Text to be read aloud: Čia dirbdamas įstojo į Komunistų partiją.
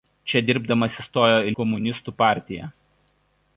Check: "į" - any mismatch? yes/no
no